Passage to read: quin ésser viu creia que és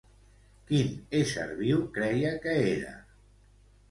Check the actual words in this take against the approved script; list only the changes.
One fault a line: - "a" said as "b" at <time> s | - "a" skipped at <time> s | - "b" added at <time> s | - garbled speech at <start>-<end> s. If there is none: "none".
- "és" said as "era" at 2.8 s